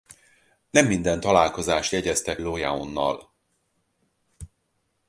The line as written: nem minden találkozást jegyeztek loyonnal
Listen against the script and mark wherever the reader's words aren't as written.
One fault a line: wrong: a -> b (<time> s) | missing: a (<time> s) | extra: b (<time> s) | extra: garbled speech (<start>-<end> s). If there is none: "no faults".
no faults